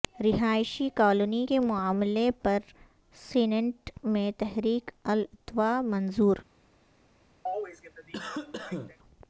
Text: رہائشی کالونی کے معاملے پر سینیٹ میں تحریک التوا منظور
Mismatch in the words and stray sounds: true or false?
true